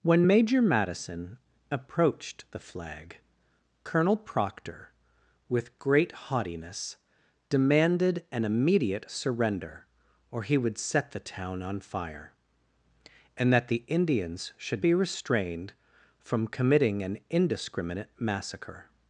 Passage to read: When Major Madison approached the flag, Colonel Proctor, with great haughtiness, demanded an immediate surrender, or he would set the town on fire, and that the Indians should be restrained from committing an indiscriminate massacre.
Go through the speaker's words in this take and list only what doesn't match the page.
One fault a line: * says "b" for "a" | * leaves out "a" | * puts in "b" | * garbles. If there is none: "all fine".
all fine